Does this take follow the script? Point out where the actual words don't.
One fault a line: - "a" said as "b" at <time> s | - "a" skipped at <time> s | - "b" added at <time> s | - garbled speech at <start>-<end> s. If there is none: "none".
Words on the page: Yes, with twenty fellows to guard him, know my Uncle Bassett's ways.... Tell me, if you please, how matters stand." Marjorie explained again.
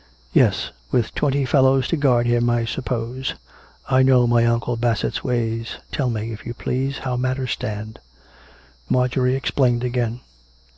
- "I suppose I" added at 2.5 s